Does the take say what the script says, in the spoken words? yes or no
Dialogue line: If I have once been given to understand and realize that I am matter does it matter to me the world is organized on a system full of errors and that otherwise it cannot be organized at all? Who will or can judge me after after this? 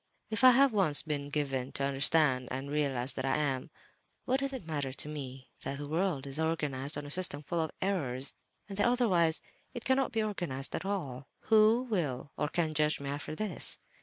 no